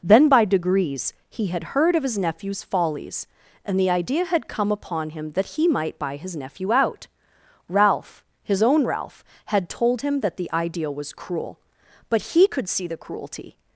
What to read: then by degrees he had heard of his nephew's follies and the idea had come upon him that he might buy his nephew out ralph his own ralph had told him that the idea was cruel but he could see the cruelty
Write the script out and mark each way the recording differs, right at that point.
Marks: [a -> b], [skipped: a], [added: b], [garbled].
then by degrees he had heard of his nephew's follies and the idea had come upon him that he might buy his nephew out ralph his own ralph had told him that the idea was cruel but he could see the cruelty